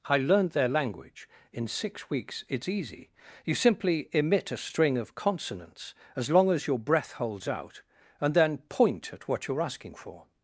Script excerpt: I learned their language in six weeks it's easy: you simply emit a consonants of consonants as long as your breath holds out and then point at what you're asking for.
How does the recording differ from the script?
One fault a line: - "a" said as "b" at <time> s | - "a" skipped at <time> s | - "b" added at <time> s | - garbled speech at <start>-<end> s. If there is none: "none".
- "consonants" said as "string" at 4.6 s